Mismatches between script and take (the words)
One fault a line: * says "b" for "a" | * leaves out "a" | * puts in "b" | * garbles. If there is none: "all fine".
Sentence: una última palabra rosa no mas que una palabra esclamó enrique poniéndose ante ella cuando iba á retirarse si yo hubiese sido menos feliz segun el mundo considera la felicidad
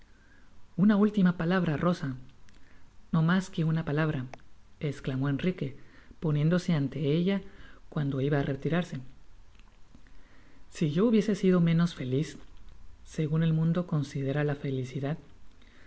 all fine